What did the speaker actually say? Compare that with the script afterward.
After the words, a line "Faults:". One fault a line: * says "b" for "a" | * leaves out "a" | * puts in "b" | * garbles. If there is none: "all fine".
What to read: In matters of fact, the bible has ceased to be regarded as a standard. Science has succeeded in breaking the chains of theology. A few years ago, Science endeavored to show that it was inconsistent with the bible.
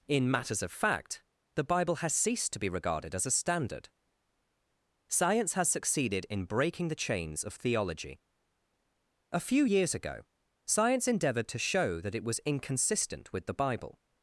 In matters of fact, the bible has ceased to be regarded as a standard. Science has succeeded in breaking the chains of theology. A few years ago, Science endeavored to show that it was inconsistent with the bible.
Faults:
all fine